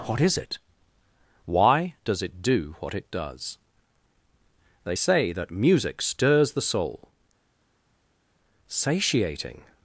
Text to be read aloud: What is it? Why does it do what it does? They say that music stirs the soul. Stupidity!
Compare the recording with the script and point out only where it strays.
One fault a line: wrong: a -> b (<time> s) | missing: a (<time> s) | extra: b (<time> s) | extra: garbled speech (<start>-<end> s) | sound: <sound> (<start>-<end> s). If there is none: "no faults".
wrong: Stupidity -> Satiating (8.7 s)